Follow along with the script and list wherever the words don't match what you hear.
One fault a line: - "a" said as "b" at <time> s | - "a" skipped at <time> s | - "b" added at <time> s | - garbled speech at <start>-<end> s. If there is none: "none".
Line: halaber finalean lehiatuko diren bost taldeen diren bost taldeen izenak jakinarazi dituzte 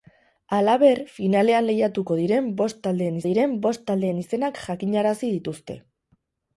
none